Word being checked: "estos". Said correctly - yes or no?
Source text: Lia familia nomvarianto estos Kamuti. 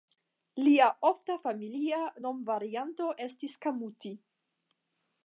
no